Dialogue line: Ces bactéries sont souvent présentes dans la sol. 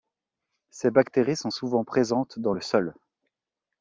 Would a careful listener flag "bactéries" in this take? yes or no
no